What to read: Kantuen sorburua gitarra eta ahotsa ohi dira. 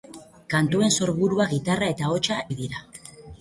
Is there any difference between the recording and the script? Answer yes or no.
no